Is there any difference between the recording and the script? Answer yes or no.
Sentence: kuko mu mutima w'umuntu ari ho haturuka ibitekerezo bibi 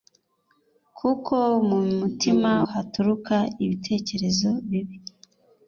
yes